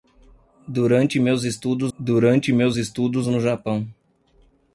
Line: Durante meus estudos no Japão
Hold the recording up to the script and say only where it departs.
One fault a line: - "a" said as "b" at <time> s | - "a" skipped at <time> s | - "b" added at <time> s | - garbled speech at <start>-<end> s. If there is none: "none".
- "durante meus estudos" added at 2.0 s